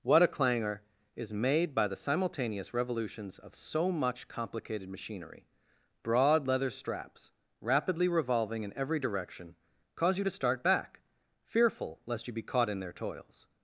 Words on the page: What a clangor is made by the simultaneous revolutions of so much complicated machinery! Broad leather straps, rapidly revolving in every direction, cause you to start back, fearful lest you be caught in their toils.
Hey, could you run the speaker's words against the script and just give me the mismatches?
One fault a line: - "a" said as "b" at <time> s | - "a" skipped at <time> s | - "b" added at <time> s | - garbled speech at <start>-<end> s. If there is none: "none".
none